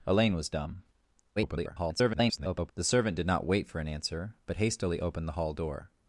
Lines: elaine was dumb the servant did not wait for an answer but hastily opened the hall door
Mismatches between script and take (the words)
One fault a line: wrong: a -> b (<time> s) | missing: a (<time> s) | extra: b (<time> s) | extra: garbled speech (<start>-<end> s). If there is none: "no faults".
extra: garbled speech (1.4-2.7 s)